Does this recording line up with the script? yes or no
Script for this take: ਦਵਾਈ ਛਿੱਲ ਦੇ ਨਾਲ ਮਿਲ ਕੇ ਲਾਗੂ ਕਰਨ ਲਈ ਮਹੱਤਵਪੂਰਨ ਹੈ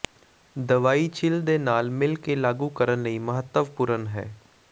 yes